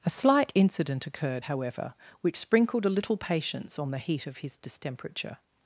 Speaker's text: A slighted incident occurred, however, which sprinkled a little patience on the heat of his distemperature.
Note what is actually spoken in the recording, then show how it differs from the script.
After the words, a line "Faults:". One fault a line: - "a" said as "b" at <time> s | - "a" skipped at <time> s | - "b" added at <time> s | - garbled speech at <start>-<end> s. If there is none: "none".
A slight incident occurred, however, which sprinkled a little patience on the heat of his distemperature.
Faults:
- "slighted" said as "slight" at 0.1 s